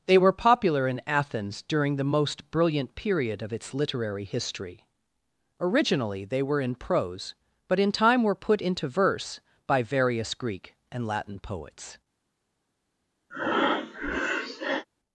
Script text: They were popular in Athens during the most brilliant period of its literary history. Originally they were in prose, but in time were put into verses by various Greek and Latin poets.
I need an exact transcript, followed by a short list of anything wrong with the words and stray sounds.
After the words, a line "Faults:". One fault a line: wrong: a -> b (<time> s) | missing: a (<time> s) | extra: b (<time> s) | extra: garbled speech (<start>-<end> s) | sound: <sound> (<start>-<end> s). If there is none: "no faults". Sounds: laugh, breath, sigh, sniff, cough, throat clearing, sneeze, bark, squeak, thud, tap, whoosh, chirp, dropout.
They were popular in Athens during the most brilliant period of its literary history. Originally they were in prose, but in time were put into verse by various Greek and Latin poets.
Faults:
wrong: verses -> verse (8.9 s)
sound: breath (13.3-14.9 s)